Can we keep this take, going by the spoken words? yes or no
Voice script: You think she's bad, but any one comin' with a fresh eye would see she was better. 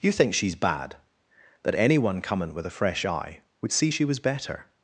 no